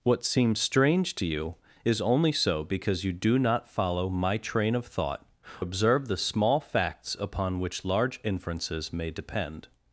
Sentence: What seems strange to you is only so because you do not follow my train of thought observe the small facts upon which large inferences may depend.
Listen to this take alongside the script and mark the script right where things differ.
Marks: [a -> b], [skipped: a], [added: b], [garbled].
What seems strange to you is only so because you do not follow my train of thought observe the small facts upon which large inferences may depend.